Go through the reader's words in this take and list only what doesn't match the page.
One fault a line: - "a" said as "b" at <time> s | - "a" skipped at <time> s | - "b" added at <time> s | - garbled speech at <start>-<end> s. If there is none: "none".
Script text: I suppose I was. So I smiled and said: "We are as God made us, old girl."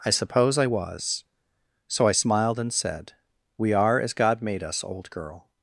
none